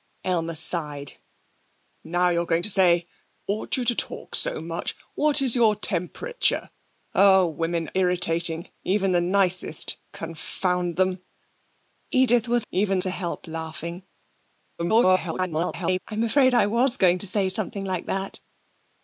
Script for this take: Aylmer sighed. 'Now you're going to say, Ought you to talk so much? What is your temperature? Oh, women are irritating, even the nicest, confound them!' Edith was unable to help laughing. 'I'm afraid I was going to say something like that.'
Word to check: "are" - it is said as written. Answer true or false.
false